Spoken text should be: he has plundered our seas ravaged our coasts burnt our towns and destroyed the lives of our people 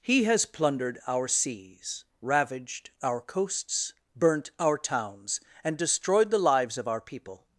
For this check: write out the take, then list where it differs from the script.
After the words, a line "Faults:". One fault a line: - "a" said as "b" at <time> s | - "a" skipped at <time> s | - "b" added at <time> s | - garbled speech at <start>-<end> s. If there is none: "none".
he has plundered our seas ravaged our coasts burnt our towns and destroyed the lives of our people
Faults:
none